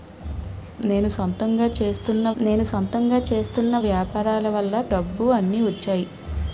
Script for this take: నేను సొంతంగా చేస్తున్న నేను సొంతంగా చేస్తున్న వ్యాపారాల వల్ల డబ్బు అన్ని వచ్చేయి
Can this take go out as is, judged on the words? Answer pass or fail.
pass